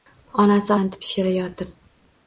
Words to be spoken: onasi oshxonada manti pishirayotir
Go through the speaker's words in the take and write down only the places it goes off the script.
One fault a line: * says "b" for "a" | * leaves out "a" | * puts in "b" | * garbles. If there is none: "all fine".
* leaves out "oshxonada"